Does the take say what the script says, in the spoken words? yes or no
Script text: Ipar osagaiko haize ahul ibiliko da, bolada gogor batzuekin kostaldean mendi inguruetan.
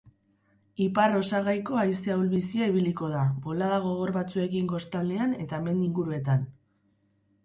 no